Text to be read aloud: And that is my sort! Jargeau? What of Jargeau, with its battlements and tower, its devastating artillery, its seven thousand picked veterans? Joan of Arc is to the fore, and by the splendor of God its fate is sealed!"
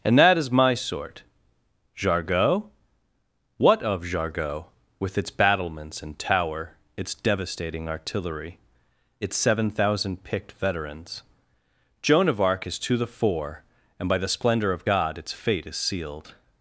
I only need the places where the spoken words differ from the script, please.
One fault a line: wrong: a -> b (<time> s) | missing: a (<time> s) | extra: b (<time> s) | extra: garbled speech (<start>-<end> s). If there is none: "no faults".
no faults